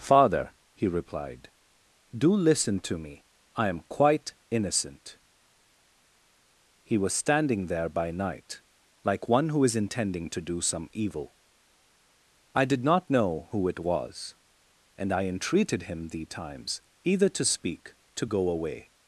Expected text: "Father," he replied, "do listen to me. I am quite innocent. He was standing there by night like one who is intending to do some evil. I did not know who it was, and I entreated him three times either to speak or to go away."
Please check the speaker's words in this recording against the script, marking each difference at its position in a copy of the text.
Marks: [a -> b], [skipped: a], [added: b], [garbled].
"Father," he replied, "do listen to me. I am quite innocent. He was standing there by night like one who is intending to do some evil. I did not know who it was, and I entreated him [three -> thee] times either to speak [skipped: or] to go away."